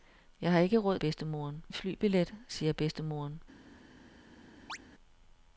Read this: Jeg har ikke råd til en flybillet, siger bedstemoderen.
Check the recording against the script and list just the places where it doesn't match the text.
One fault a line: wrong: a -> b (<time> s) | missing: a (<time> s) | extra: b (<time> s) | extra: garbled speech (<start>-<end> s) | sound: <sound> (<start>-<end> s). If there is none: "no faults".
wrong: til -> bedstemoderen (1.0 s)
sound: chirp (4.7-4.8 s)